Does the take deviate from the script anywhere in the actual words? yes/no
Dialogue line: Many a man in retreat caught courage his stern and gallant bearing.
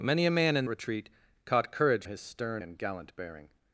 no